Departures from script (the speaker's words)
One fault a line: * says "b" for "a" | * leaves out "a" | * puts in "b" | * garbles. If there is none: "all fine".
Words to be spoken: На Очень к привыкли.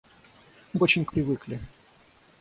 all fine